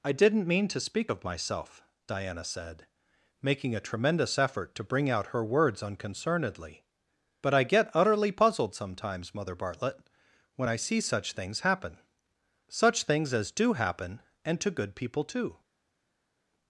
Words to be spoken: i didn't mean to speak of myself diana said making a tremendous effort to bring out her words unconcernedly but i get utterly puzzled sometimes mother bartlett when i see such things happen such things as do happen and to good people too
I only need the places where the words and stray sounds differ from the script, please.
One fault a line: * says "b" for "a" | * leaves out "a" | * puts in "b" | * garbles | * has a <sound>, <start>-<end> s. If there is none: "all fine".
all fine